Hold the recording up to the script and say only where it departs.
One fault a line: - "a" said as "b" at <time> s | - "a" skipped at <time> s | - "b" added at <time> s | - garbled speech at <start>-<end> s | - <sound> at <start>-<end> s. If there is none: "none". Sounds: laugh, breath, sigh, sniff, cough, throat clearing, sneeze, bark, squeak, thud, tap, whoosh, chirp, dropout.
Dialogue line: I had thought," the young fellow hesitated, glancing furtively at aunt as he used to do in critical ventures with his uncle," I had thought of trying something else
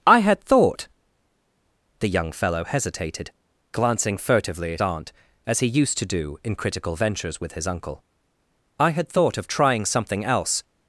none